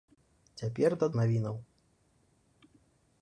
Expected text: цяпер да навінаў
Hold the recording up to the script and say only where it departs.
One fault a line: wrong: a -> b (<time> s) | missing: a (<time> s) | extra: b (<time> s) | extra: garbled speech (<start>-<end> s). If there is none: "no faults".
no faults